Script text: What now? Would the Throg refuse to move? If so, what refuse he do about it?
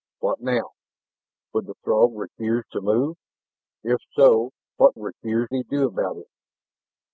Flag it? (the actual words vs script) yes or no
no